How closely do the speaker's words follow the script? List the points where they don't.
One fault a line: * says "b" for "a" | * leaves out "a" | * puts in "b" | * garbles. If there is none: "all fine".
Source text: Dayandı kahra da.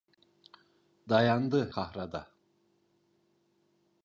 all fine